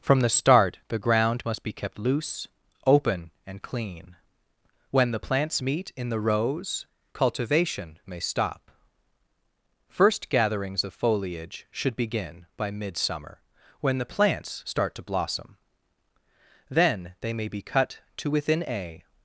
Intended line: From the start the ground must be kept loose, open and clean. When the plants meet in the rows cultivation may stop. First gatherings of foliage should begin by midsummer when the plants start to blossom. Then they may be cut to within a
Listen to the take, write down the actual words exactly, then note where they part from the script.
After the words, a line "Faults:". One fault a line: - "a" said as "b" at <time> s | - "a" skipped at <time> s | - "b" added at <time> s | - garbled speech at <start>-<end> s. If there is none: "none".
From the start the ground must be kept loose, open and clean. When the plants meet in the rows cultivation may stop. First gatherings of foliage should begin by midsummer when the plants start to blossom. Then they may be cut to within a
Faults:
none